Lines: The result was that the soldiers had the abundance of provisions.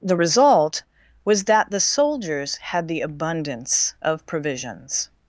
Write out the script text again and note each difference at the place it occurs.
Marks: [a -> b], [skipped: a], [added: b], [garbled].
The result was that the soldiers had the abundance of provisions.